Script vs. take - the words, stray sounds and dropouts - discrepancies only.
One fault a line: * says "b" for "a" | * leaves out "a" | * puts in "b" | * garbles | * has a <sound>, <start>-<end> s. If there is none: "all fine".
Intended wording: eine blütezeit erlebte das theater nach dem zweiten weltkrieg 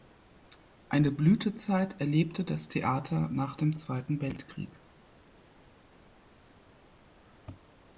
all fine